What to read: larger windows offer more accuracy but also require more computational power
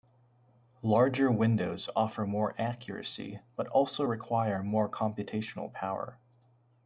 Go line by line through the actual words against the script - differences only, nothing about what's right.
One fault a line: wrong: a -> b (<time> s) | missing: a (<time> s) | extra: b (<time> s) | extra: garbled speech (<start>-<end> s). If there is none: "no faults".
no faults